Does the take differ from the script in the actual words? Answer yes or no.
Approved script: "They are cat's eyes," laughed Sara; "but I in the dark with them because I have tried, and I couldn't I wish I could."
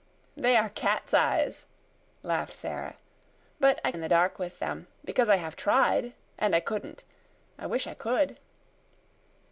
no